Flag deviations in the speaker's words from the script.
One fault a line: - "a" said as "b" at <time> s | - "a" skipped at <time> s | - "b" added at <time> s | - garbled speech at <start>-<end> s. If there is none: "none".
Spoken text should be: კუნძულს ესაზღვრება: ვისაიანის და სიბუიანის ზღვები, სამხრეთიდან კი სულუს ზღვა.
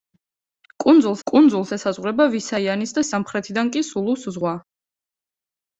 - "კუნძულს" added at 1.3 s
- "სიბუიანის ზღვები" skipped at 3.1 s